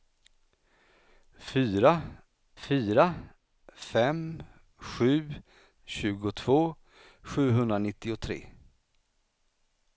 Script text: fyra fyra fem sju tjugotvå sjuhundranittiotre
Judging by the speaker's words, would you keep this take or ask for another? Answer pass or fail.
pass